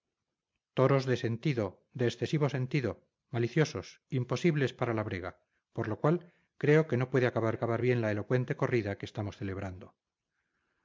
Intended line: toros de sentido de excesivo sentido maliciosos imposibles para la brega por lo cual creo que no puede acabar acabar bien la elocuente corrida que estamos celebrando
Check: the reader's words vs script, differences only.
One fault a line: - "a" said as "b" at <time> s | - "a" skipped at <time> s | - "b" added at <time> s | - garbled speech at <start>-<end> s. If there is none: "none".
none